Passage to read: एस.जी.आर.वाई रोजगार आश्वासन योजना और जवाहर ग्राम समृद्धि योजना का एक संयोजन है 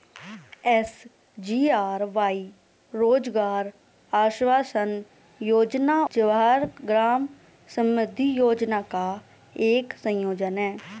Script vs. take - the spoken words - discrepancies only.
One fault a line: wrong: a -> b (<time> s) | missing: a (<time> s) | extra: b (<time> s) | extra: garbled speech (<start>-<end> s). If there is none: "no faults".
missing: और (6.0 s)